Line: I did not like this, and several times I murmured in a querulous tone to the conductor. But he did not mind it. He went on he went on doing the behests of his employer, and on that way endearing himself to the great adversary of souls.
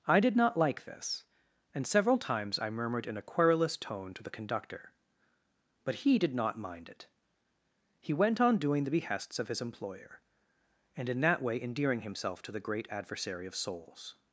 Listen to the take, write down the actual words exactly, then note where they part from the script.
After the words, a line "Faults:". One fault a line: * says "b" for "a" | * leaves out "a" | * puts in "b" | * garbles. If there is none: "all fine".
I did not like this, and several times I murmured in a querulous tone to the conductor. But he did not mind it. He went on doing the behests of his employer, and in that way endearing himself to the great adversary of souls.
Faults:
* leaves out "he went on"
* says "in" for "on"